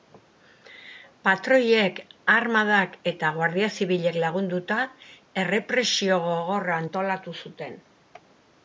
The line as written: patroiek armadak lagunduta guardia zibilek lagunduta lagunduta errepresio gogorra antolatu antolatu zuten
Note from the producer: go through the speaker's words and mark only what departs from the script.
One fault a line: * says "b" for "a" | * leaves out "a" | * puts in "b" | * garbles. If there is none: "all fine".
* says "eta" for "lagunduta"
* leaves out "lagunduta"
* leaves out "antolatu"